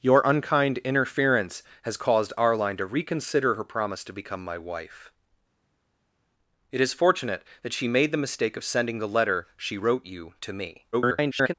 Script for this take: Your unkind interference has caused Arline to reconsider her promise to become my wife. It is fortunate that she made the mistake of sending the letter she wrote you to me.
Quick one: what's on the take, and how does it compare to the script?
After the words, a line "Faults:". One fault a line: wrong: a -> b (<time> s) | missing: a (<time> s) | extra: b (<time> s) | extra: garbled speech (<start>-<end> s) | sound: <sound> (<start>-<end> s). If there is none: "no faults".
Your unkind interference has caused Arline to reconsider her promise to become my wife. It is fortunate that she made the mistake of sending the letter she wrote you to me. [garbled]
Faults:
extra: garbled speech (10.9-11.5 s)